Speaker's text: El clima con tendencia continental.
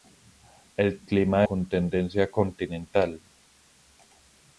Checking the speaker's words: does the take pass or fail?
pass